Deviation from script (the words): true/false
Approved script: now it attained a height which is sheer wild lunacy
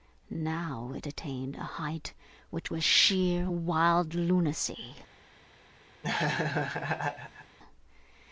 true